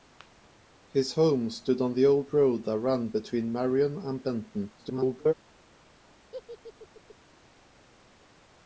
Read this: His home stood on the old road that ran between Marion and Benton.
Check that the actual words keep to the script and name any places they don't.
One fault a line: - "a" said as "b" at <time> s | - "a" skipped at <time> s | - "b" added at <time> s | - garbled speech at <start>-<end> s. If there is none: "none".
- garbled speech at 4.8-5.3 s